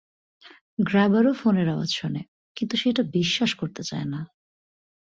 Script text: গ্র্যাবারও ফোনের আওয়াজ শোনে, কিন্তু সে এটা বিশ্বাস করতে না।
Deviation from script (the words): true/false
true